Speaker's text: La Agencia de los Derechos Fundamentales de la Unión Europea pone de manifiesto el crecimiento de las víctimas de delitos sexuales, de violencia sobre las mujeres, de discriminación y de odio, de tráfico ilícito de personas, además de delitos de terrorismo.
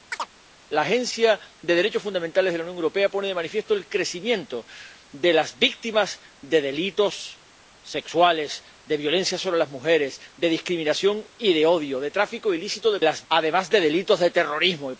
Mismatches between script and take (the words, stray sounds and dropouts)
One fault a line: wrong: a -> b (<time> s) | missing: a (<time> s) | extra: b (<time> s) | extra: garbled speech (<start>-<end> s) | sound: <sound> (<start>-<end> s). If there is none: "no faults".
sound: chirp (0.1-0.3 s)
wrong: personas -> las (13.0 s)